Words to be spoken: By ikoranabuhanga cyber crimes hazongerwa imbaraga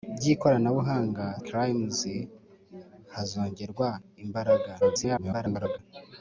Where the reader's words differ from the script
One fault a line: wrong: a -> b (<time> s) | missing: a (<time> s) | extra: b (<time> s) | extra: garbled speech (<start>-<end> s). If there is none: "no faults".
missing: cyber (1.2 s)
extra: garbled speech (4.8-5.8 s)